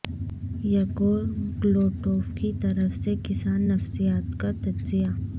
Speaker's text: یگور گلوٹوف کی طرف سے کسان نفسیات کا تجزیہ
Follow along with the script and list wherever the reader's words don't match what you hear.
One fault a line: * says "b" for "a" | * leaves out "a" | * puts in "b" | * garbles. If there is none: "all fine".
all fine